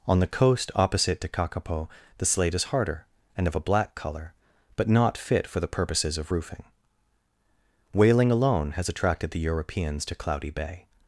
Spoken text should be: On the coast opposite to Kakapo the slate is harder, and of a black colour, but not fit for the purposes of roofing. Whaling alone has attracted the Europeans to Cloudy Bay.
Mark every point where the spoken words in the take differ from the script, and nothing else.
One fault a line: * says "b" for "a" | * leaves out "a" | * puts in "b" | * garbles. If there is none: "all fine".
all fine